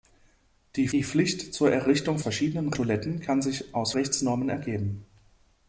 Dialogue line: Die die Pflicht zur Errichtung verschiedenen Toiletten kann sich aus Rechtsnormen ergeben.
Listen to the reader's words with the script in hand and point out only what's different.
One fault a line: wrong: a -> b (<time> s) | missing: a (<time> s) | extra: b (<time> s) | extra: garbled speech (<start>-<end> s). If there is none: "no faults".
no faults